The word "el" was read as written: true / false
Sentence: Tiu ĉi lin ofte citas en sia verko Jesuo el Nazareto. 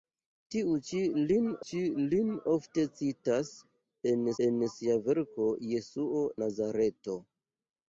false